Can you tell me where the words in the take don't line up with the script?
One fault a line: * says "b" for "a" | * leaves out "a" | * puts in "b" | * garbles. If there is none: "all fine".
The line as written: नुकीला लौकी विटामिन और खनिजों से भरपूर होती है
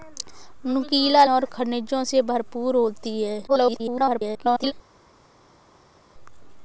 * leaves out "लौकी विटामिन"
* garbles